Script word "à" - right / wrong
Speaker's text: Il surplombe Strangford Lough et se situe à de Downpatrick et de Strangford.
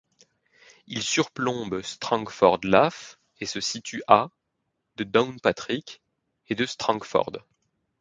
right